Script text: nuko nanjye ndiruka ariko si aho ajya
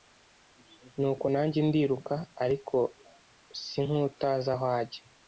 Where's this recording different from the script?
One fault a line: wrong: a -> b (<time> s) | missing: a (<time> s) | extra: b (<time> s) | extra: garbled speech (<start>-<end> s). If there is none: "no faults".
extra: nk'utazi (3.8 s)